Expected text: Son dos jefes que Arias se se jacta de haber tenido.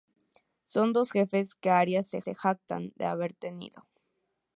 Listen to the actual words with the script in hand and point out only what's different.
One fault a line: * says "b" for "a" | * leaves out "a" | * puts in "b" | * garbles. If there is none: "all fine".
all fine